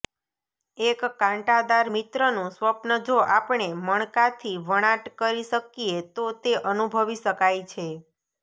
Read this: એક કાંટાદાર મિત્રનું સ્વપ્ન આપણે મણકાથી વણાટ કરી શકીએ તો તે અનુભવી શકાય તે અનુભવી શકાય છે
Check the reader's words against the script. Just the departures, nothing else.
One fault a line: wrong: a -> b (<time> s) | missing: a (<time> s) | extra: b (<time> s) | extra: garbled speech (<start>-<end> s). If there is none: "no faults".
extra: જો (3.1 s)
missing: તે અનુભવી શકાય (7.6 s)